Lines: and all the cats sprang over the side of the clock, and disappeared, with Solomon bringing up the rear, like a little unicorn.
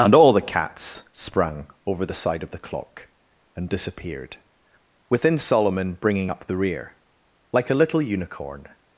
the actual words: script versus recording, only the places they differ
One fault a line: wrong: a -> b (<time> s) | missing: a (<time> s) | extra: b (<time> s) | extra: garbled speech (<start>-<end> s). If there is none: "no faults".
wrong: with -> within (5.1 s)